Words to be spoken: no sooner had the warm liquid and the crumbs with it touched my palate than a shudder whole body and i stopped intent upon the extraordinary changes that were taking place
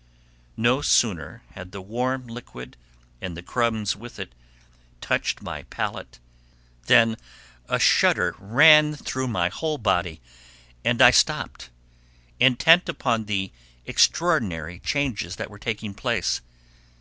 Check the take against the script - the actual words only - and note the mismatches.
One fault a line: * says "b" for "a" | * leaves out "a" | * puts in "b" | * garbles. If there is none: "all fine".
* puts in "ran through my"